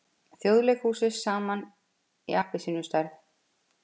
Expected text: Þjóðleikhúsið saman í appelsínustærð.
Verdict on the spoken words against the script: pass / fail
pass